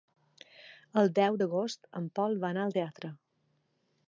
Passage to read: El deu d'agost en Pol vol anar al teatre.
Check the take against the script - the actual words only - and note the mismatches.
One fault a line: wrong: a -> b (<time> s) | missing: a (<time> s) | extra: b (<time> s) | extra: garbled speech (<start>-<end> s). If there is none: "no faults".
no faults